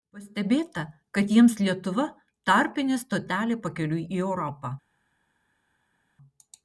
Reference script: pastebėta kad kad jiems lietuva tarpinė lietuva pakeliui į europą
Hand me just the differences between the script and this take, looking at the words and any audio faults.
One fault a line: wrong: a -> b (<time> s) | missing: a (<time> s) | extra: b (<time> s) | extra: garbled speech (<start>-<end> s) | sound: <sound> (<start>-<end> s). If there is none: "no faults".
missing: kad (1.3 s)
wrong: lietuva -> stotelė (3.0 s)